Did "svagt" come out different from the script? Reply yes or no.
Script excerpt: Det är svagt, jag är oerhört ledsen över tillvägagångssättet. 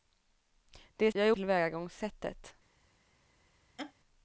yes